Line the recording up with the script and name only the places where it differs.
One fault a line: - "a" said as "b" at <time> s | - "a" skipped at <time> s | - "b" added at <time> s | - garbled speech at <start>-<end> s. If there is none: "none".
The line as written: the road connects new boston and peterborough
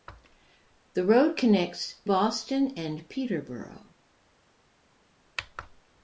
- "new" skipped at 2.0 s